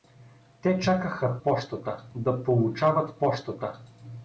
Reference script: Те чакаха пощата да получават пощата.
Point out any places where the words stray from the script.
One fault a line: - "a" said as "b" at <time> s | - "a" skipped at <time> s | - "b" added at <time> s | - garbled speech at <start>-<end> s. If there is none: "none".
none